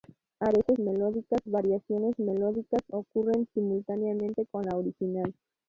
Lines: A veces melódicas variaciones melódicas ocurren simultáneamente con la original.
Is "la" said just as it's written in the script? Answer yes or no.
yes